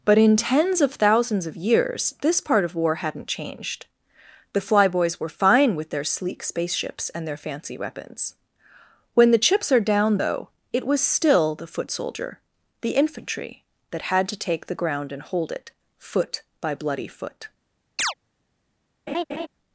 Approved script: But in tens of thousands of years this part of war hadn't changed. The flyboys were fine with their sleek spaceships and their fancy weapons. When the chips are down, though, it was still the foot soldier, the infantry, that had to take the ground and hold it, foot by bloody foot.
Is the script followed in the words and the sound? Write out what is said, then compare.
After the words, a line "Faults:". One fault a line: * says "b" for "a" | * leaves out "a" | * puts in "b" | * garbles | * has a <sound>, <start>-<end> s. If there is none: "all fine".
But in tens of thousands of years this part of war hadn't changed. The flyboys were fine with their sleek spaceships and their fancy weapons. When the chips are down, though, it was still the foot soldier, the infantry, that had to take the ground and hold it, foot by bloody foot.
Faults:
* has a chirp, 18.0-18.1 s
* has a laugh, 19.1-19.5 s